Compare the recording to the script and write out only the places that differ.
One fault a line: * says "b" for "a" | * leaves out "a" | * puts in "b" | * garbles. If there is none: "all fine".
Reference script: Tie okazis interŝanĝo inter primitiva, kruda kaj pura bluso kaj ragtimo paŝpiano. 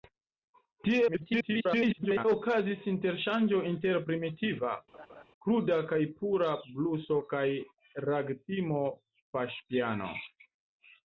* garbles